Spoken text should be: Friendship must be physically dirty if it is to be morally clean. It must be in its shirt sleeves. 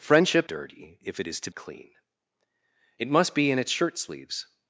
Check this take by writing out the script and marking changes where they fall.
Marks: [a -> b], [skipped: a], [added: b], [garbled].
Friendship [skipped: must be physically] dirty if it is to [skipped: be morally] clean. It must be in its shirt sleeves.